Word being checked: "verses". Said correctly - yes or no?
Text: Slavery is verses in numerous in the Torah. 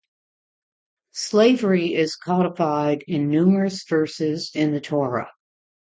no